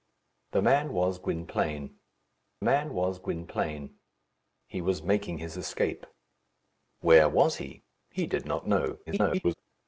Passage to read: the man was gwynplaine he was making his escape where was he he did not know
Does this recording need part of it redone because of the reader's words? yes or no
yes